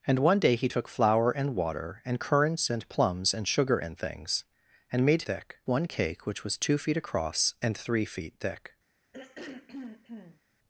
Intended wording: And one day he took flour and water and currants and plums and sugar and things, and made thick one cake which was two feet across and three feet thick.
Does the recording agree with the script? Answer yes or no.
yes